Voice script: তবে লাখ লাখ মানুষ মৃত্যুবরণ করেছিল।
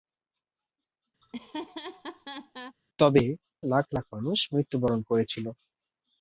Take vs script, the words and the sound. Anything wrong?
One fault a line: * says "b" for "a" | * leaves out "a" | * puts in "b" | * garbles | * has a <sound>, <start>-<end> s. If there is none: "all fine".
* has a laugh, 1.2-2.8 s